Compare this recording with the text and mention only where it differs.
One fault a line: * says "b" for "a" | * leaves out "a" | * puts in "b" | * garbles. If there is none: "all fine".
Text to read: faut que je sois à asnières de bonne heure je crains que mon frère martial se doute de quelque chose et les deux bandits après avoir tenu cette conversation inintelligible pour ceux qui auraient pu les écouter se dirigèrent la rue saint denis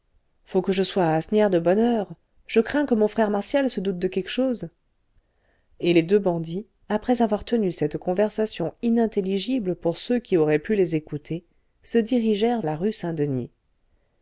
all fine